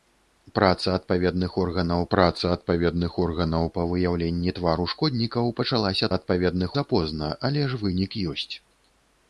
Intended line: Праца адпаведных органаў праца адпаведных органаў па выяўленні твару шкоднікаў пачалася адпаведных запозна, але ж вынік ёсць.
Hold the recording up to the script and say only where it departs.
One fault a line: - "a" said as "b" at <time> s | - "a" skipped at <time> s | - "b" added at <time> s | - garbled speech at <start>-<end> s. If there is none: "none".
none